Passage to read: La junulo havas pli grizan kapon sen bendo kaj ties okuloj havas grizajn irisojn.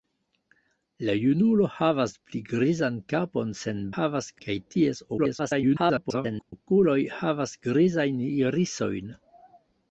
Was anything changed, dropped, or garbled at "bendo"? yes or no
yes